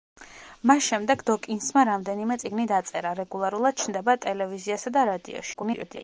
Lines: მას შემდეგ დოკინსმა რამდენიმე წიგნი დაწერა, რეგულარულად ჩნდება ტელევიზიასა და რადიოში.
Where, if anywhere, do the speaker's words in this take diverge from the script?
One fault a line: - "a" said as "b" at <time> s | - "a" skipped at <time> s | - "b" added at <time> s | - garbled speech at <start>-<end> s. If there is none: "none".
- garbled speech at 5.5-6.0 s